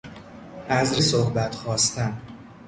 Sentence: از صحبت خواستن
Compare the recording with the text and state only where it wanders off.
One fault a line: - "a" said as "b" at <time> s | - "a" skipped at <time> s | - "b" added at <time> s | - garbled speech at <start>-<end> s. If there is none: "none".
none